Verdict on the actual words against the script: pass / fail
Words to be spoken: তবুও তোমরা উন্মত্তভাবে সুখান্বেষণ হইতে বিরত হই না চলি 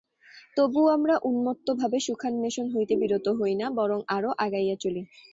fail